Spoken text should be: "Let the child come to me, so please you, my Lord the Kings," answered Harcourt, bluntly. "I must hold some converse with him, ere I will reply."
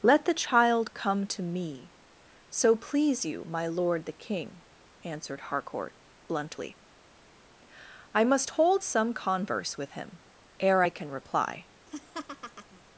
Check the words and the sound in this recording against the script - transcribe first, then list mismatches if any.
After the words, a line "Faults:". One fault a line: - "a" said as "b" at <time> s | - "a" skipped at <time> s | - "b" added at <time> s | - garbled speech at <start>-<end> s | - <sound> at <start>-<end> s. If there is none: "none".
"Let the child come to me, so please you, my Lord the King," answered Harcourt, bluntly. "I must hold some converse with him, ere I can reply."
Faults:
- "Kings" said as "King" at 4.1 s
- "will" said as "can" at 10.9 s
- laugh at 11.9-12.8 s